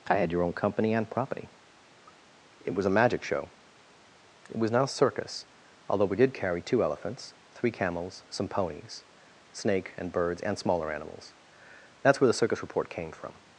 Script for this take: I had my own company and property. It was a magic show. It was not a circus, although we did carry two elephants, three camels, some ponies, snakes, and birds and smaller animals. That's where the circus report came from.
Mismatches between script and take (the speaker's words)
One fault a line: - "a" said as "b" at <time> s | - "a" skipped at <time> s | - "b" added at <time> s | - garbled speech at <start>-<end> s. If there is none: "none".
- "my" said as "your" at 0.3 s
- "snakes" said as "snake" at 9.5 s